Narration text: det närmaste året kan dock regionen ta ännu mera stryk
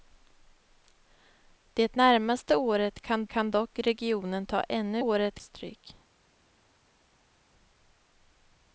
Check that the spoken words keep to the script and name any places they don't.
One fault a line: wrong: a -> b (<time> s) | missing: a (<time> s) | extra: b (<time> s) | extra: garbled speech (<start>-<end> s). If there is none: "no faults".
extra: kan (3.3 s)
wrong: mera -> året (5.0 s)